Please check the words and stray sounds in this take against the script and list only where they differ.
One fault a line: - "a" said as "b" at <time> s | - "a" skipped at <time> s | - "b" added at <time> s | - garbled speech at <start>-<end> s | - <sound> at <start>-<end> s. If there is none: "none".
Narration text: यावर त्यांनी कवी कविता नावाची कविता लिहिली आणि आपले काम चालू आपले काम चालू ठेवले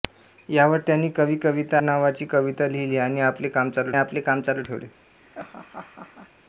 - laugh at 5.2-6.3 s